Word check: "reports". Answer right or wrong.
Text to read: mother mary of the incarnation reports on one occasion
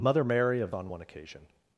wrong